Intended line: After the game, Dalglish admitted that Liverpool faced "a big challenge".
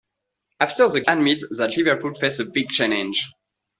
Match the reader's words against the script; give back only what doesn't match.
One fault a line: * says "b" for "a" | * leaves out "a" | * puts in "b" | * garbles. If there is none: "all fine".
* leaves out "game Dalglish"